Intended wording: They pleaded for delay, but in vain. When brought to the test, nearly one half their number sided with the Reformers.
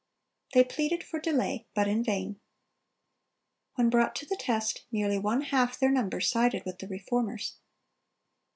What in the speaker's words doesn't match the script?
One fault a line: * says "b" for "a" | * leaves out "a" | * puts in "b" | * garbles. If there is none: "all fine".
all fine